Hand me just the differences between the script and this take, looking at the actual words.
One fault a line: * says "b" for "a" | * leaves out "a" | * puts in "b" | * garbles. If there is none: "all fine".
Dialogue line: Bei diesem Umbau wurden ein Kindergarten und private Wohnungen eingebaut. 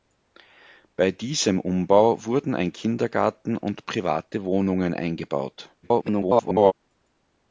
* garbles